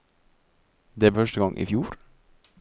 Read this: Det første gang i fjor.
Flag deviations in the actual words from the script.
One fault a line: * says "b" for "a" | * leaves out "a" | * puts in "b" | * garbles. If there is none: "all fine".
all fine